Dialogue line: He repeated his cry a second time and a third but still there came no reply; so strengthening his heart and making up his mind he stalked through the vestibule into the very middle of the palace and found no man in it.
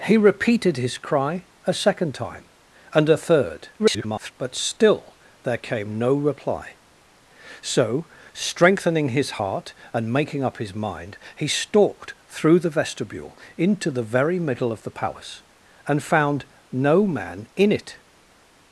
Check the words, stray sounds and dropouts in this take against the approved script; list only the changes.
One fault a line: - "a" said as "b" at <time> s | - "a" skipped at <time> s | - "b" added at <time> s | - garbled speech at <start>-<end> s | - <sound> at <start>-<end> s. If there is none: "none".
- garbled speech at 3.8-4.3 s